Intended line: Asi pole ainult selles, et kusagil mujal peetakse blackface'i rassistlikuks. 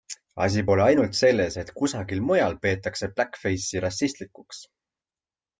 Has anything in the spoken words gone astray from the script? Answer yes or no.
no